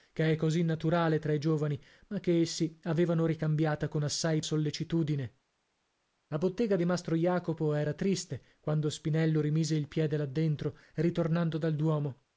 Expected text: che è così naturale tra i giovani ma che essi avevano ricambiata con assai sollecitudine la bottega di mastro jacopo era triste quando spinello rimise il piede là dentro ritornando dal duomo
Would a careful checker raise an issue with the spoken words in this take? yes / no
no